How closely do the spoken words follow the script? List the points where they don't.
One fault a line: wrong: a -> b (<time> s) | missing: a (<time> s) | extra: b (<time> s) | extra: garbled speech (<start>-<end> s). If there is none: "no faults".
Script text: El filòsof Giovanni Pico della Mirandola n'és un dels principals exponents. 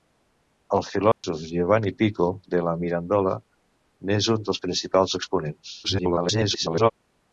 extra: garbled speech (5.8-6.9 s)